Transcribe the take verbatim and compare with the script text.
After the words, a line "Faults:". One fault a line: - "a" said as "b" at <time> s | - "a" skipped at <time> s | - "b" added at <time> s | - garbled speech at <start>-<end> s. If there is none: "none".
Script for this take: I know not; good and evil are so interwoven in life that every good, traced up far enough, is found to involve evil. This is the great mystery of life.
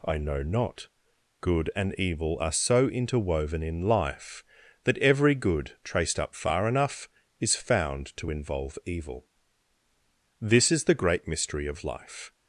I know not; good and evil are so interwoven in life that every good, traced up far enough, is found to involve evil. This is the great mystery of life.
Faults:
none